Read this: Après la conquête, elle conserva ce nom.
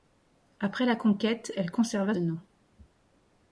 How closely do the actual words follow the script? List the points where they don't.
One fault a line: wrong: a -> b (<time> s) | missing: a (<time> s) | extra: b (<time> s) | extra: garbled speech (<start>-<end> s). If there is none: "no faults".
missing: ce (2.1 s)